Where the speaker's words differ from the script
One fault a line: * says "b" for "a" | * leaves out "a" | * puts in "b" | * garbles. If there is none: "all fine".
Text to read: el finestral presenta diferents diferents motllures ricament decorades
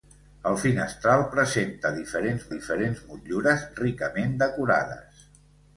all fine